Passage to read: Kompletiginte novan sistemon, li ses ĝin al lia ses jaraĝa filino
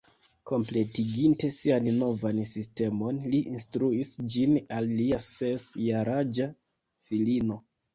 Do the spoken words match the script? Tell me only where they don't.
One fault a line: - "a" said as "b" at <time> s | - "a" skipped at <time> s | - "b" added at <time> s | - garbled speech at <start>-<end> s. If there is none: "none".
- "sian" added at 1.6 s
- "ses" said as "instruis" at 3.5 s